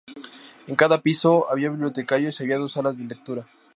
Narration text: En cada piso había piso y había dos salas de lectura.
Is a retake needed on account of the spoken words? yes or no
yes